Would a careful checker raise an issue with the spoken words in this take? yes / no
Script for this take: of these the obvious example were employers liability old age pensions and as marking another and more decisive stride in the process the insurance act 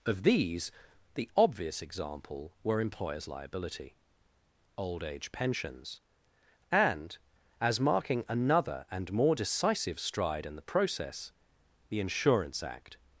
no